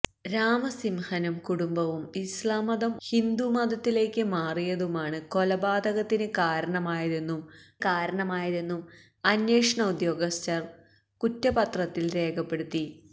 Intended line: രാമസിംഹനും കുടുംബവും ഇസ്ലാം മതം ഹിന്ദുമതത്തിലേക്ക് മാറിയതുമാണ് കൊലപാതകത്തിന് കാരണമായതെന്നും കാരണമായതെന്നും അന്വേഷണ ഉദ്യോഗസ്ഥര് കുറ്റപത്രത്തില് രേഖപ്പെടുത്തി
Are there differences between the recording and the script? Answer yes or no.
no